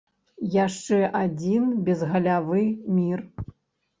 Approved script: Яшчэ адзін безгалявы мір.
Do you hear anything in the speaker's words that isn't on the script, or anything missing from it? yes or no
no